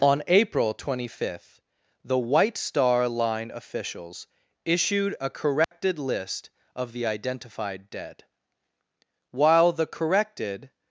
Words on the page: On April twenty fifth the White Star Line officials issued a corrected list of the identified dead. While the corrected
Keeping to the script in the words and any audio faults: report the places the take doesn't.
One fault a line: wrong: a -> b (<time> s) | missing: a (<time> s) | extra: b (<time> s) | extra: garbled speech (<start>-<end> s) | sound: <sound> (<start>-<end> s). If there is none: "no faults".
sound: dropout (5.6-5.7 s)